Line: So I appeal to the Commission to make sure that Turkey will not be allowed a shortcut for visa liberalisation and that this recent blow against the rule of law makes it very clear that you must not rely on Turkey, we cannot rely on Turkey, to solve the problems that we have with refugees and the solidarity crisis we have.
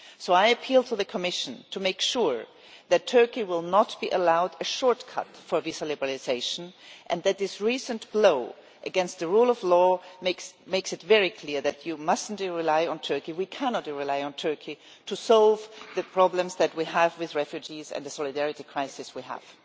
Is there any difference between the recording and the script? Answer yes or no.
no